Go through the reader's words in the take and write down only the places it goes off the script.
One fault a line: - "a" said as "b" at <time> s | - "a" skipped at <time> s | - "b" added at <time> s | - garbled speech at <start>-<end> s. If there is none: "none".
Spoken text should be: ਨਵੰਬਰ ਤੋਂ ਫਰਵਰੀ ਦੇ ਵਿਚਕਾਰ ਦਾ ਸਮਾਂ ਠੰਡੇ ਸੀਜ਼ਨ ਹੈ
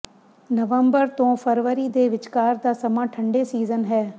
none